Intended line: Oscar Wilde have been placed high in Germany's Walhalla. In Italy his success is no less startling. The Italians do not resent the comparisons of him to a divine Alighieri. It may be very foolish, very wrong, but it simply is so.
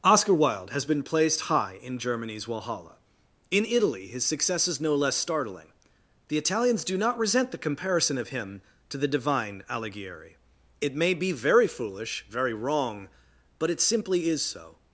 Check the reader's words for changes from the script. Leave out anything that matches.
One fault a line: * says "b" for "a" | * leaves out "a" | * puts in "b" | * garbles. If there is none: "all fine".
* says "has" for "have"
* says "comparison" for "comparisons"
* says "the" for "a"